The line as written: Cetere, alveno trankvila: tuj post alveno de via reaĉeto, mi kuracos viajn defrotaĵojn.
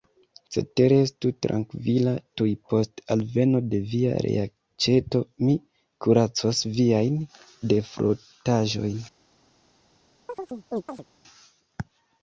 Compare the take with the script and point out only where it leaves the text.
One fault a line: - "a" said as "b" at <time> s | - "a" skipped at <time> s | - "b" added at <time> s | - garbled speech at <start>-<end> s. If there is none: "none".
- "alveno" said as "estu" at 1.1 s